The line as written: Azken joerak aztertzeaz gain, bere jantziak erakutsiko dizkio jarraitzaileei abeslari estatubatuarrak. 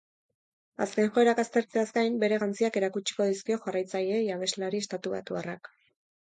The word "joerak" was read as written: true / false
true